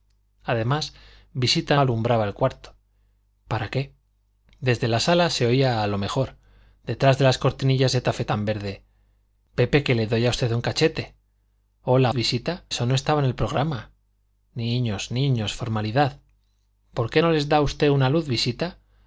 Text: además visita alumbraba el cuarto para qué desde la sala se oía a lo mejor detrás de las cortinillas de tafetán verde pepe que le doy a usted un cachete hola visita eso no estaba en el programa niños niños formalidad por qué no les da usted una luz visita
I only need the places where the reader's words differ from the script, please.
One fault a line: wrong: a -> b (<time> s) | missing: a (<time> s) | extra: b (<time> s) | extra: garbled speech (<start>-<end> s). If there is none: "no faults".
no faults